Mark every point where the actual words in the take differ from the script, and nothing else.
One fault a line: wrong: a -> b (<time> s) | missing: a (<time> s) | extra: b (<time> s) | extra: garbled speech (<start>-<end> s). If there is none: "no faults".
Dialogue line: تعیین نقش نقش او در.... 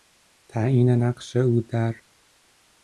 missing: نقش (1.4 s)